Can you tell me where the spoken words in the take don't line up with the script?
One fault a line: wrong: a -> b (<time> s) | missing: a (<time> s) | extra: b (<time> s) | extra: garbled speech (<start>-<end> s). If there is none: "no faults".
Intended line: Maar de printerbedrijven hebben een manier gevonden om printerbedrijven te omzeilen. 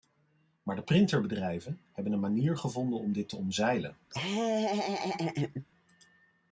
wrong: printerbedrijven -> dit (3.1 s)